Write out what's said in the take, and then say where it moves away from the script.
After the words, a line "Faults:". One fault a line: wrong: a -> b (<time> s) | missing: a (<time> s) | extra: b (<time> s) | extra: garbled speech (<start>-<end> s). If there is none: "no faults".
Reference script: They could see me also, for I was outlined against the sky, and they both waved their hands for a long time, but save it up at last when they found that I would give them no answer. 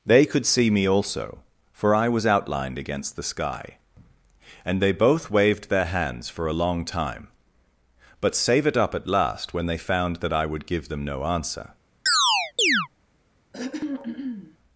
They could see me also, for I was outlined against the sky, and they both waved their hands for a long time, but save it up at last when they found that I would give them no answer.
Faults:
no faults